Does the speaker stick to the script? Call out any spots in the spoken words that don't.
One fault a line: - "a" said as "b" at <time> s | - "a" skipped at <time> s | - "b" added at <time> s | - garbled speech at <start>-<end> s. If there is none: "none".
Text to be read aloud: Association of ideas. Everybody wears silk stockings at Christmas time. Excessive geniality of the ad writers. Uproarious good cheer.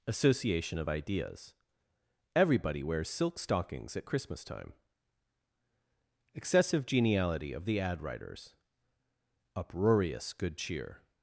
none